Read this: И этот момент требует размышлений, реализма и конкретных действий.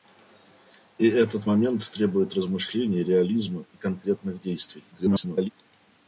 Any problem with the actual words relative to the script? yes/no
yes